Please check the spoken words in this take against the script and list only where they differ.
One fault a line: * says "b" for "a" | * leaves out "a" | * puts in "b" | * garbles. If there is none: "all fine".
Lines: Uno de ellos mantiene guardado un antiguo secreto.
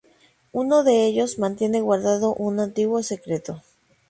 all fine